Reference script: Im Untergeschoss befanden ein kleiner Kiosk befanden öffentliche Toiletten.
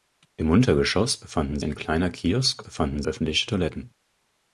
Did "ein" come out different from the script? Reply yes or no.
no